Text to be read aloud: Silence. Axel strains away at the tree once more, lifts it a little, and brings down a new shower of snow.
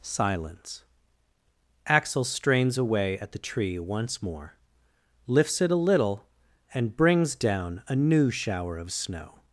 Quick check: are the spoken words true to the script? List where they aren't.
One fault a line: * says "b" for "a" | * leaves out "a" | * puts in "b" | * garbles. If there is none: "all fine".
all fine